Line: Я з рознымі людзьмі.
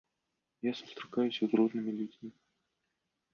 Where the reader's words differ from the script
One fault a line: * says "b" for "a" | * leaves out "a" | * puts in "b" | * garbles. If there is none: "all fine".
* puts in "сустракаюся"